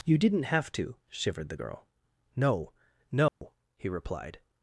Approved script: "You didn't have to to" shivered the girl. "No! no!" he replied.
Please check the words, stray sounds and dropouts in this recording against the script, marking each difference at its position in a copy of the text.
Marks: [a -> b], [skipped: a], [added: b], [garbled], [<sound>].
"You didn't have to [skipped: to"] shivered the girl. "No! no!" [dropout] he replied.